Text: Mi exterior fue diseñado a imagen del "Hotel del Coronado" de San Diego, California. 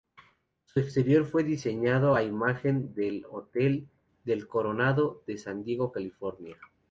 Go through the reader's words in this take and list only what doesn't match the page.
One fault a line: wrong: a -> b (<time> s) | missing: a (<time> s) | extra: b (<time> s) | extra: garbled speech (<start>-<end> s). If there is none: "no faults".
wrong: Mi -> Su (0.7 s)